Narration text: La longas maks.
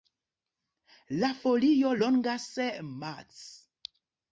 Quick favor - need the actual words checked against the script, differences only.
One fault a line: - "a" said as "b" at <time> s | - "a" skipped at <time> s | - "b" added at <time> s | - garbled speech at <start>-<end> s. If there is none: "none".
- "folio" added at 1.4 s